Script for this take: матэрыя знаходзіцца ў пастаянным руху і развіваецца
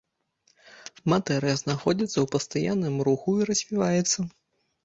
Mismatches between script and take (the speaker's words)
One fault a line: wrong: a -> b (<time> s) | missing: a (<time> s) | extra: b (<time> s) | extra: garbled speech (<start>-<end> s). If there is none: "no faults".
no faults